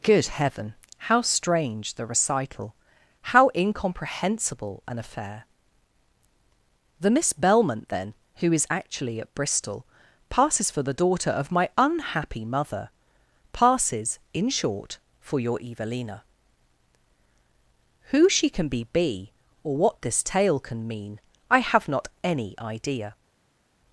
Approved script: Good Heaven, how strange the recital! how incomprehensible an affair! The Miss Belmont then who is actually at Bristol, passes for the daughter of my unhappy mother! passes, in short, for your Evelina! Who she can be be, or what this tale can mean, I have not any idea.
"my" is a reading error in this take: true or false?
false